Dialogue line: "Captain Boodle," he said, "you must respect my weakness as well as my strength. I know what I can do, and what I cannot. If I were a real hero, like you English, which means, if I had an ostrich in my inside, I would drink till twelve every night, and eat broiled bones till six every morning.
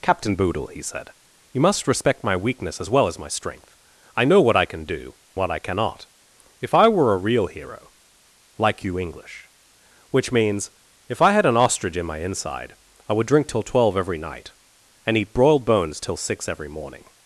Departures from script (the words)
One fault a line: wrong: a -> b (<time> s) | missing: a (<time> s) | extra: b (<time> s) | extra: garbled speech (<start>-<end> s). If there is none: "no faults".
missing: and (5.1 s)